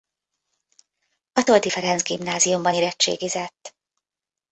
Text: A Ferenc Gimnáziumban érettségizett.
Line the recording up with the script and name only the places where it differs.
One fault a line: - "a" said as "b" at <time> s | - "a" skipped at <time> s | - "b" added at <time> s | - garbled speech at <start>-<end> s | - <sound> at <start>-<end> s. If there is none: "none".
- "Toldy" added at 1.4 s